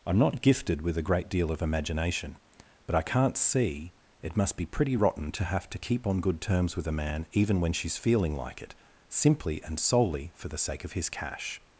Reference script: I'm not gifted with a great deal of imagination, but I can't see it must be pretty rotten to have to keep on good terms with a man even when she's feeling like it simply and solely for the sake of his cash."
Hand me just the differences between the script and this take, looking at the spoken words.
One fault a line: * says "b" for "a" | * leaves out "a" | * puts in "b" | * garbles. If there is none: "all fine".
all fine